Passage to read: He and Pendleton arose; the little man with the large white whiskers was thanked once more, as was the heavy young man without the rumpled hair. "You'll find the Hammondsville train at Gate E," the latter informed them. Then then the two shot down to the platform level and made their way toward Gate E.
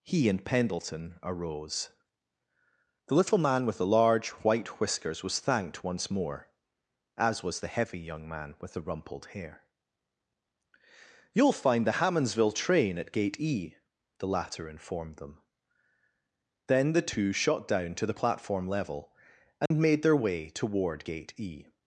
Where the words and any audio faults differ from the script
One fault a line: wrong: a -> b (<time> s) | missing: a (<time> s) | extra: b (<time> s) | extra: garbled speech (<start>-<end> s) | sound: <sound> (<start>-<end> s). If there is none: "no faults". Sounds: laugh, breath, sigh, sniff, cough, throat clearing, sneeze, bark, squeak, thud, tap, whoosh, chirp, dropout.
wrong: without -> with (8.6 s)
missing: then (16.9 s)
sound: dropout (19.7-19.7 s)